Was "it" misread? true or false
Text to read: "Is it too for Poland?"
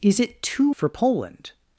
false